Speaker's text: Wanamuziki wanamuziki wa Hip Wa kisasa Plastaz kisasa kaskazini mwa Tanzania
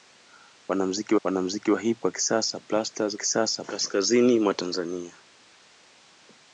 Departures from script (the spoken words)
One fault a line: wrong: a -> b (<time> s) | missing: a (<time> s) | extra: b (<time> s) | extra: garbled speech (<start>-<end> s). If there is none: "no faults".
no faults